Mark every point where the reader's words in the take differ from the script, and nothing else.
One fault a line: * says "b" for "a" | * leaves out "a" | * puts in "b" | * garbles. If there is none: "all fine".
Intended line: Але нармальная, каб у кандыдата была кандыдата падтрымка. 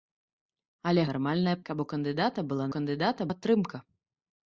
all fine